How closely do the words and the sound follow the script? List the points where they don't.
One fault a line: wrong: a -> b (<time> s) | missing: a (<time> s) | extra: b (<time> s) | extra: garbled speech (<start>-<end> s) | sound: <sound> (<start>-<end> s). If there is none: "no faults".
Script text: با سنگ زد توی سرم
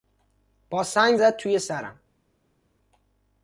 no faults